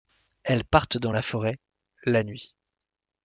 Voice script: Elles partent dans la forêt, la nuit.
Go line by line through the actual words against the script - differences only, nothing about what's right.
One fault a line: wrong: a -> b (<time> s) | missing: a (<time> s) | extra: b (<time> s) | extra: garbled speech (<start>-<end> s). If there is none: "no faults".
no faults